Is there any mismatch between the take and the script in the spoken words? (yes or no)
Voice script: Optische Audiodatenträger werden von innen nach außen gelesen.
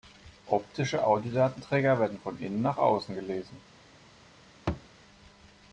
no